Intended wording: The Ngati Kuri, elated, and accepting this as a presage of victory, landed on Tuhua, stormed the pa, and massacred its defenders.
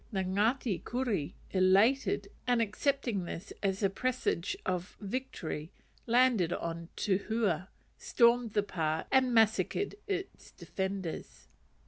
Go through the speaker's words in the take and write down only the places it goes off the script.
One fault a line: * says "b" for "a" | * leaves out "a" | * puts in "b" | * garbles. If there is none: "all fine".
all fine